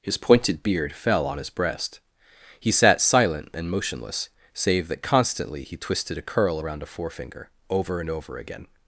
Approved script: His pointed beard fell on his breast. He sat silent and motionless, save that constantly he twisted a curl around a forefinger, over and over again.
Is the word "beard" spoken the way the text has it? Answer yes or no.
yes